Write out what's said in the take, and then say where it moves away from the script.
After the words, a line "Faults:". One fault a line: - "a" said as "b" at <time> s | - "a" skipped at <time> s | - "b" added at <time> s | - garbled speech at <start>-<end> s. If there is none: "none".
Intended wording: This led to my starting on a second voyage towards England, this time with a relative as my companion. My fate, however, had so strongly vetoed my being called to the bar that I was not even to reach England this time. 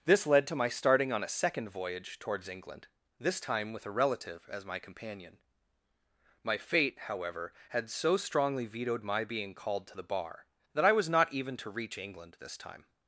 This led to my starting on a second voyage towards England, this time with a relative as my companion. My fate, however, had so strongly vetoed my being called to the bar that I was not even to reach England this time.
Faults:
none